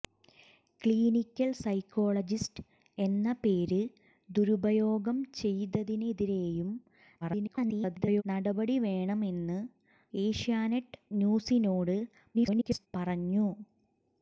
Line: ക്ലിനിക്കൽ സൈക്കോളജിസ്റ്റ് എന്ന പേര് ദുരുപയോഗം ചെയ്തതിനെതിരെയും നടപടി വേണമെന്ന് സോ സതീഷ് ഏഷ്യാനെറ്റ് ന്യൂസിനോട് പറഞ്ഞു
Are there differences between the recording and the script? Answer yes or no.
yes